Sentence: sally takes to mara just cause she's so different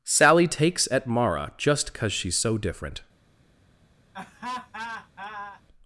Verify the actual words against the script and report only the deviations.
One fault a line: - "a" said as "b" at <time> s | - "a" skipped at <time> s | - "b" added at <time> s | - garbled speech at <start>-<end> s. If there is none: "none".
- "to" said as "at" at 0.9 s